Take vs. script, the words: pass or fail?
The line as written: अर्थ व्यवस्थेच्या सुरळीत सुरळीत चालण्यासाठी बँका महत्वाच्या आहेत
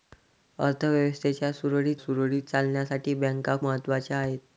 pass